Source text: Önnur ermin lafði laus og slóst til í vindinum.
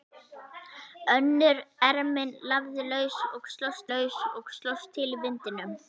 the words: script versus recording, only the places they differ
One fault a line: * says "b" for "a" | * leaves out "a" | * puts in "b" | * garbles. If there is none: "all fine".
* puts in "laus og slóst"